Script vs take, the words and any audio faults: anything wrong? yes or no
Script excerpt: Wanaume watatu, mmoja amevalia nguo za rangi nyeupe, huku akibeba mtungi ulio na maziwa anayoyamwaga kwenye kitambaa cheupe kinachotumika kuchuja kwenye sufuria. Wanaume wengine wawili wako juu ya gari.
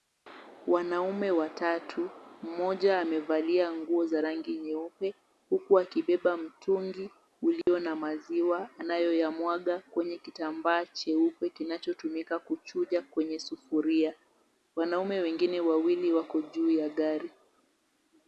yes